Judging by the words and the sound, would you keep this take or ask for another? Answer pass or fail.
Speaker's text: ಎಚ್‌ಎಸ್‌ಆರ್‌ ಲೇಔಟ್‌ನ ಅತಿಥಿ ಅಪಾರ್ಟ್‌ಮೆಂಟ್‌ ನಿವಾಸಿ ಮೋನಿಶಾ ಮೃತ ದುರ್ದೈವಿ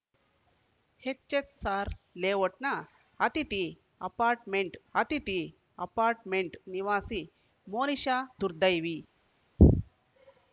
fail